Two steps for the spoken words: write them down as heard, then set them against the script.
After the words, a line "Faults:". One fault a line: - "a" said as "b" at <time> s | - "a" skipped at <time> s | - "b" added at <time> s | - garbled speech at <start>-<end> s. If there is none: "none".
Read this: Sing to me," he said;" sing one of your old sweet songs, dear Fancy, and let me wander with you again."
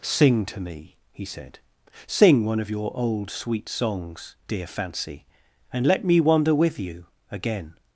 Sing to me," he said;" sing one of your old sweet songs, dear Fancy, and let me wander with you again."
Faults:
none